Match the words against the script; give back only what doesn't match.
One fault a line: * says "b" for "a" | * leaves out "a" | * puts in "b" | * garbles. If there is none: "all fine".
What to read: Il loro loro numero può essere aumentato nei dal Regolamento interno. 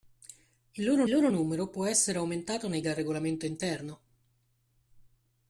all fine